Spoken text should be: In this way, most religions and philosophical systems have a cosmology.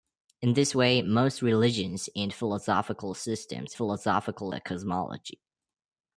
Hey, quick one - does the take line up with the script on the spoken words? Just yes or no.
no